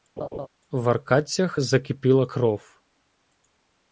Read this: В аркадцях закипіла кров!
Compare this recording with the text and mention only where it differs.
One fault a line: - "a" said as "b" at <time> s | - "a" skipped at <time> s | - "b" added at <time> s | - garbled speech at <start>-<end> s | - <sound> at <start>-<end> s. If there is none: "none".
- laugh at 0.2-0.5 s